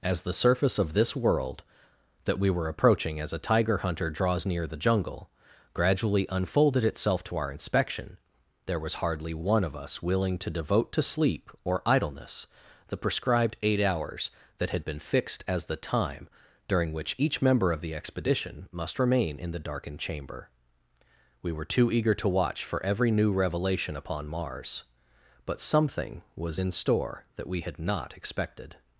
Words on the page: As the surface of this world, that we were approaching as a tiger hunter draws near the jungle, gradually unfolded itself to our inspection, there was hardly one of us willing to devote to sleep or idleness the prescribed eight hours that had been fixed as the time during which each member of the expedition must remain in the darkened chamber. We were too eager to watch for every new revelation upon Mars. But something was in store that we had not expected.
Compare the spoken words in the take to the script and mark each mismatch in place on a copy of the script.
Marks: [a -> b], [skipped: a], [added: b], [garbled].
As the surface of this world, that we were approaching as a tiger hunter draws near the jungle, gradually unfolded itself to our inspection, there was hardly one of us willing to devote to sleep or idleness the prescribed eight hours that had been fixed as the time during which each member of the expedition must remain in the darkened chamber. We were too eager to watch for every new revelation upon Mars. But something was in store that we had not expected.